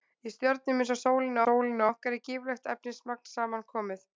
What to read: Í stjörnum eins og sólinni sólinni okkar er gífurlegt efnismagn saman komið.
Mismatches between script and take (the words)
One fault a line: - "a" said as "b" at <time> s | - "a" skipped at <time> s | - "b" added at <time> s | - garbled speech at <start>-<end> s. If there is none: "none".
none